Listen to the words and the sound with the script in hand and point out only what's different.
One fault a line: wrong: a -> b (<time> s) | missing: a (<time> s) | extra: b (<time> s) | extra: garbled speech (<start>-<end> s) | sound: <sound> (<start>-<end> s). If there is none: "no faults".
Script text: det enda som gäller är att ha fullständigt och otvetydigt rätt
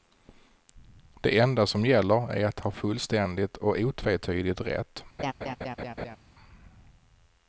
sound: laugh (5.2-6.2 s)